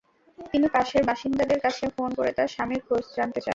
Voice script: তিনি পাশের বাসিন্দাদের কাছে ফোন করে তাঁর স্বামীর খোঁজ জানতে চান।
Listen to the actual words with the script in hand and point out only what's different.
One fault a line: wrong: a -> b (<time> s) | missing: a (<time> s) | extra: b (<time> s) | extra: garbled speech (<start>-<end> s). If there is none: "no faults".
no faults